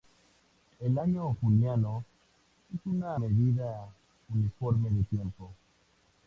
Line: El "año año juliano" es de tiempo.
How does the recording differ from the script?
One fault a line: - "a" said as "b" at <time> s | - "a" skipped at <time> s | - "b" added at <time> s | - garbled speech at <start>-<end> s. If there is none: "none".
- "año" skipped at 1.4 s
- "una medida uniforme" added at 2.9 s